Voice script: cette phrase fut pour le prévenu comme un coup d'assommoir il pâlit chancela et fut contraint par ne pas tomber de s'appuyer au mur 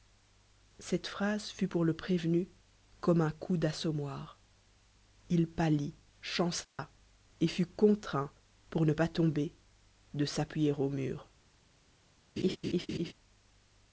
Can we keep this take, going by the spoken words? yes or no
no